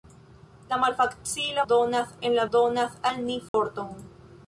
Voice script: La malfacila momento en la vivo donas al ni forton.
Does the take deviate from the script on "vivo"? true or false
true